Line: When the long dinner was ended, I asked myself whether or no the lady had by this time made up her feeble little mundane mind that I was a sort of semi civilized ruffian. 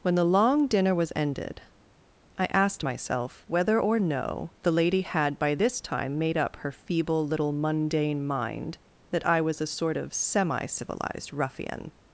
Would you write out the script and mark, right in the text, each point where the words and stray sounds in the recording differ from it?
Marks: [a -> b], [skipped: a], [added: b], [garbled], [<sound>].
When the long dinner was ended, I asked myself whether or no the lady had by this time made up her feeble little mundane mind that I was a sort of semi civilized ruffian.